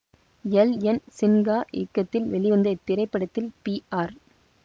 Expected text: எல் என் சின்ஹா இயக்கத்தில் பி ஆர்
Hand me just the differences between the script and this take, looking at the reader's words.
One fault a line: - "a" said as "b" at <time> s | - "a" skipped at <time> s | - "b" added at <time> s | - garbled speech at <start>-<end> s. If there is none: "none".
- "வெளிவந்த இத்திரைப்படத்தில்" added at 2.3 s